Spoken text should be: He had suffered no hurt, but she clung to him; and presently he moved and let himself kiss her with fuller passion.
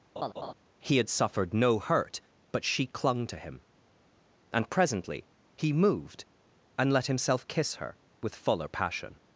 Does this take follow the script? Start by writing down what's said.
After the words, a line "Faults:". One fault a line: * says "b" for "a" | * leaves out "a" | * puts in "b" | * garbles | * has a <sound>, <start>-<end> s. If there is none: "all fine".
He had suffered no hurt, but she clung to him; and presently he moved and let himself kiss her with fuller passion.
Faults:
* has a laugh, 0.2-0.5 s